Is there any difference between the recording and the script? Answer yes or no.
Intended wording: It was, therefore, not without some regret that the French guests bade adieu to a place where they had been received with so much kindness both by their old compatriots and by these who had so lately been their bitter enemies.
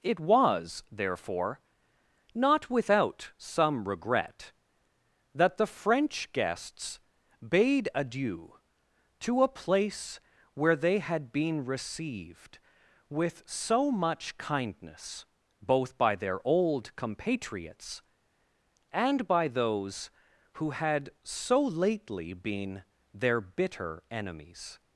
yes